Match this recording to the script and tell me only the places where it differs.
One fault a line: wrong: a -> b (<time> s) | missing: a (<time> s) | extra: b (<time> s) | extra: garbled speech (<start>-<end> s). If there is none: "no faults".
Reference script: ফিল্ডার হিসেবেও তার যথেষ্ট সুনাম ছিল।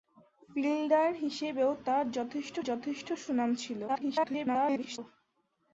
extra: যথেষ্ট (2.6 s)
extra: garbled speech (3.9-5.0 s)